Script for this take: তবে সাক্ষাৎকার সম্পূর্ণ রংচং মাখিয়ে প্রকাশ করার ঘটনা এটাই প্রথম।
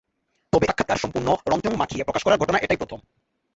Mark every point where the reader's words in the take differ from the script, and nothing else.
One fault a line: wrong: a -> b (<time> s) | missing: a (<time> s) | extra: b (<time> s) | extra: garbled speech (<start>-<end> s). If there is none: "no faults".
no faults